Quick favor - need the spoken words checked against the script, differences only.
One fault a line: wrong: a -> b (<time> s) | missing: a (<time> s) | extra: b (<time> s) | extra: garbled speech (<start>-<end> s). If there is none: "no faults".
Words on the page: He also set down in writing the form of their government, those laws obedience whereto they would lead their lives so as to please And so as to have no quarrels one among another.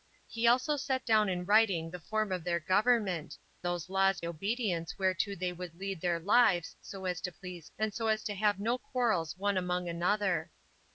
no faults